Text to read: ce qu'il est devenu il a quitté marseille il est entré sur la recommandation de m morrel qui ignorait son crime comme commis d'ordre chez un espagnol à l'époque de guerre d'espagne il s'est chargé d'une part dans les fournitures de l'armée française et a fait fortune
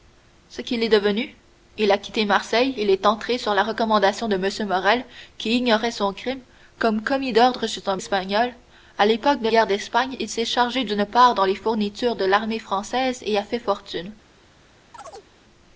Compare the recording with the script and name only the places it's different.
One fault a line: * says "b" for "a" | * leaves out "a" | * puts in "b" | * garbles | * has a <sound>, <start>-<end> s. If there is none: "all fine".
* has a chirp, 14.9-15.3 s